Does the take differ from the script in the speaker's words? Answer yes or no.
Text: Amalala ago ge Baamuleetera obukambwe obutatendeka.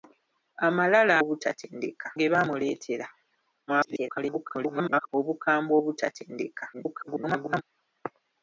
yes